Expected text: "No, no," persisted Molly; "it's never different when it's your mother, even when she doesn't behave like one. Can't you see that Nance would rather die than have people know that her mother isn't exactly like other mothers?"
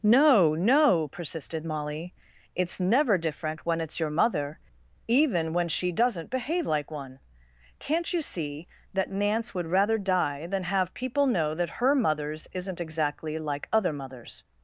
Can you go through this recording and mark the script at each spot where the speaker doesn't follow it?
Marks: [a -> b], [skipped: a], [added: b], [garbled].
"No, no," persisted Molly; "it's never different when it's your mother, even when she doesn't behave like one. Can't you see that Nance would rather die than have people know that her [mother -> mothers] isn't exactly like other mothers?"